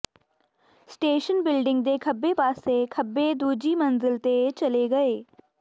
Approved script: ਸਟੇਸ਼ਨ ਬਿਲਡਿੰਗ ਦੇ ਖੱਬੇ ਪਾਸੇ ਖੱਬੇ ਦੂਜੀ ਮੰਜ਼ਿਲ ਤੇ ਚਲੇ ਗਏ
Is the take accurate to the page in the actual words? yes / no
yes